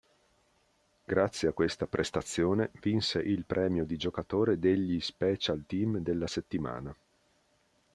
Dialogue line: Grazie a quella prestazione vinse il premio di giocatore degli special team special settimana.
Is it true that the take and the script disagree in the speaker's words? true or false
true